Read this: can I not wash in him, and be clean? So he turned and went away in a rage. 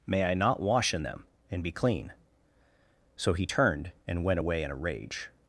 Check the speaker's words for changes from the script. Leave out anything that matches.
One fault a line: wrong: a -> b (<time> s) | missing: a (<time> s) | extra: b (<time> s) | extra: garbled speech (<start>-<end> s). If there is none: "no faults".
wrong: can -> may (0.1 s)
wrong: him -> them (1.0 s)